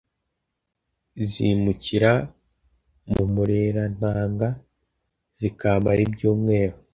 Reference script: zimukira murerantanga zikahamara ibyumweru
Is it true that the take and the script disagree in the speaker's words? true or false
true